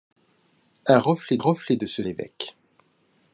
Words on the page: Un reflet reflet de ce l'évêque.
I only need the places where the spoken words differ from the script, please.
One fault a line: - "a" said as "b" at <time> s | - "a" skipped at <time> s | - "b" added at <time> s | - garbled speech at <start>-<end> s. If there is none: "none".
none